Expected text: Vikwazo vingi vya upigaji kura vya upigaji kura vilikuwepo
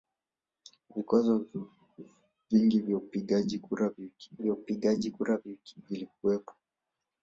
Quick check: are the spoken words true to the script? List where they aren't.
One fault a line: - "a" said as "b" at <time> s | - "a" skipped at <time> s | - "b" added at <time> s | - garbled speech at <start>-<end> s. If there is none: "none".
none